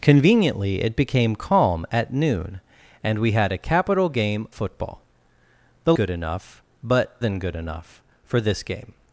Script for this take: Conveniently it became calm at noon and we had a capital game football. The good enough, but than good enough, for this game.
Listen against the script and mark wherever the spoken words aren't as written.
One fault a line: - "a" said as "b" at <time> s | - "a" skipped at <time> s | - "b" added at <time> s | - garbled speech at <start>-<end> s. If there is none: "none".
none